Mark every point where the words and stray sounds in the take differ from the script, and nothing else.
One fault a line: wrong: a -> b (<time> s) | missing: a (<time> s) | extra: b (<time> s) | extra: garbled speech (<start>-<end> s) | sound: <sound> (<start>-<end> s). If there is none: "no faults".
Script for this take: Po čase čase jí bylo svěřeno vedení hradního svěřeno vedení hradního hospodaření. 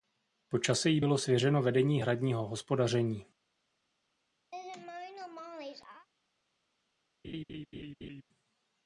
missing: čase (0.9 s)
missing: svěřeno vedení hradního (2.5 s)
sound: laugh (4.5-6.1 s)
sound: laugh (7.2-8.2 s)